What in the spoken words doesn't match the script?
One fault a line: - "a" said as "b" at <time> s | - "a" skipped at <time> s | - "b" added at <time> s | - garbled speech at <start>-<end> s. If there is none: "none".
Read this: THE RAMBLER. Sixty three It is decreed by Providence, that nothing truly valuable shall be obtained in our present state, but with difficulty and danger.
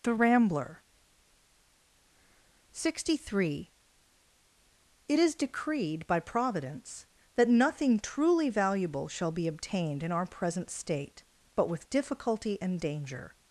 none